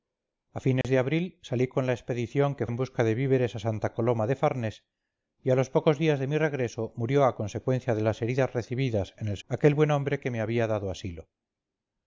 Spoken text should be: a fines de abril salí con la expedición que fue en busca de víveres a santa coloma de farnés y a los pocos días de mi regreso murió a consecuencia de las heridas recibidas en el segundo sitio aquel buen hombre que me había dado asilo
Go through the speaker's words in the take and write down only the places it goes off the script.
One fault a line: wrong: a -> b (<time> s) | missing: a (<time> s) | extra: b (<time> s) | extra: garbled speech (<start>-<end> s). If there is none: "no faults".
missing: fue (2.6 s)
missing: segundo sitio (9.4 s)